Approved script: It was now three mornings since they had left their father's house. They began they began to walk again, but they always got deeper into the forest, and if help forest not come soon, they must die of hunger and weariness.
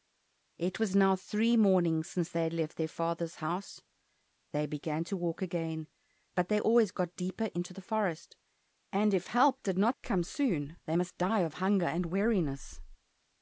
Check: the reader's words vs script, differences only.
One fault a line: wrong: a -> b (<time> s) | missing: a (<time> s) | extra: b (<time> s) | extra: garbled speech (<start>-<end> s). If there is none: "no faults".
missing: they began (5.0 s)
wrong: forest -> did (9.6 s)